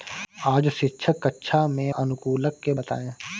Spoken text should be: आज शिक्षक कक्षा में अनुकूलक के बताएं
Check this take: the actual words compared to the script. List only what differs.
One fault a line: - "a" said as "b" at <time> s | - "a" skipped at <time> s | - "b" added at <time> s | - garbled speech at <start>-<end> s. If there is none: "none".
none